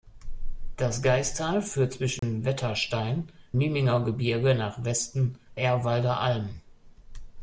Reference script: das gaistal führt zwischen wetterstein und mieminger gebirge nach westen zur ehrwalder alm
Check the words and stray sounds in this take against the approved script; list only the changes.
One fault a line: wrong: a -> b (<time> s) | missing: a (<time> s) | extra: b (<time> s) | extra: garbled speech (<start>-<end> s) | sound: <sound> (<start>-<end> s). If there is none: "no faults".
sound: dropout (2.2-2.2 s)
missing: und (3.3 s)
missing: zur (5.4 s)